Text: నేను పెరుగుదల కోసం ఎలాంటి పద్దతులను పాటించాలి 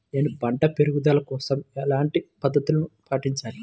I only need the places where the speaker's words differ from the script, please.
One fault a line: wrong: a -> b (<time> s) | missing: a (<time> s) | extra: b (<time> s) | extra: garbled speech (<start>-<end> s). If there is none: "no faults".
extra: పంట (0.4 s)